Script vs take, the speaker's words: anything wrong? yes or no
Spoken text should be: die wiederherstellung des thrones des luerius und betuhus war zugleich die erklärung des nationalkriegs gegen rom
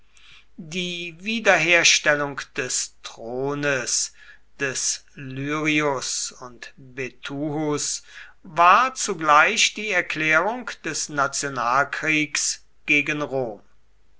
no